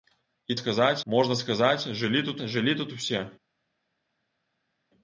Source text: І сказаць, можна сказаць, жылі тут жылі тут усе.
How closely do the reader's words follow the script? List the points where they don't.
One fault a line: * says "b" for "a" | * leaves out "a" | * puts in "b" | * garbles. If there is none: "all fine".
all fine